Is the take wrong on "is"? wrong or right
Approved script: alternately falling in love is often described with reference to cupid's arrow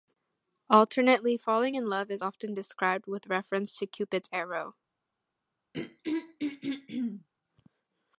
right